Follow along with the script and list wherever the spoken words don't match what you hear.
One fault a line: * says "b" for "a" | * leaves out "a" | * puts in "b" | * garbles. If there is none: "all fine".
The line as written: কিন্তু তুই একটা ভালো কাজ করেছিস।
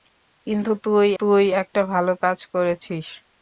* puts in "তুই"